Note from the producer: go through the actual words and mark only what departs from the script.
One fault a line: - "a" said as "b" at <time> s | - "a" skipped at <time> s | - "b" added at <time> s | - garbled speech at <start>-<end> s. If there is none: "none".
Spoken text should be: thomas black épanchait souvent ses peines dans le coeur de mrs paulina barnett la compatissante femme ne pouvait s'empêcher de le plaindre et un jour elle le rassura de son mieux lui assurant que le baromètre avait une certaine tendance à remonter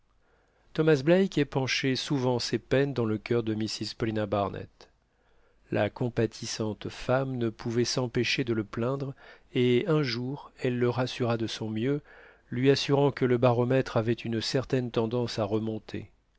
none